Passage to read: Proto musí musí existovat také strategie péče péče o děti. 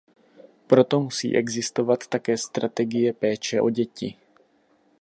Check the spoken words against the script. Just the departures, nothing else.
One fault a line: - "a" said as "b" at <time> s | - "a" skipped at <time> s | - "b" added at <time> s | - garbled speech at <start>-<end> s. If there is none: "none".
- "musí" skipped at 1.4 s
- "péče" skipped at 3.6 s